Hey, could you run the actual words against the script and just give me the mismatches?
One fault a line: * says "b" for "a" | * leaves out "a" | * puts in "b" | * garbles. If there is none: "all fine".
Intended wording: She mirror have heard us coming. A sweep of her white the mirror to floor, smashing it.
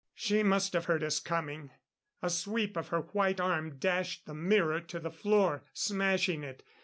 * says "must" for "mirror"
* puts in "arm dashed"
* puts in "the"